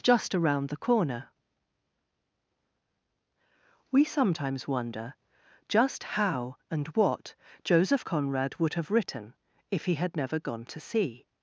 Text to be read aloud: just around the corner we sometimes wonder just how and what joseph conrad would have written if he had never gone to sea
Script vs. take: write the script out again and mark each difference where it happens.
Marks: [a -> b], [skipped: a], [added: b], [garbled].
just around the corner we sometimes wonder just how and what joseph conrad would have written if he had never gone to sea